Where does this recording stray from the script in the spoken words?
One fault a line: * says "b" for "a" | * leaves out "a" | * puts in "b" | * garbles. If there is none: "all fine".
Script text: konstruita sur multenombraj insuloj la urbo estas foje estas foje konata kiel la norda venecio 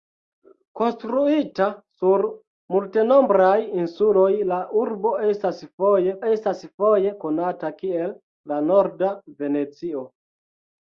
all fine